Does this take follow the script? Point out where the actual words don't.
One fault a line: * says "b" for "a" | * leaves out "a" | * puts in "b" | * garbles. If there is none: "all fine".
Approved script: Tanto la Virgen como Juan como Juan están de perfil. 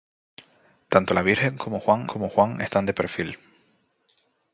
all fine